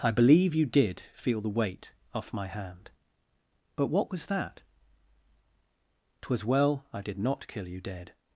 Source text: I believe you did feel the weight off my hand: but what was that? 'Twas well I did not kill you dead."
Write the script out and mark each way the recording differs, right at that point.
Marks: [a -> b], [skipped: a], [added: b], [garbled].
I believe you did feel the weight off my hand: but what was that? 'Twas well I did not kill you dead."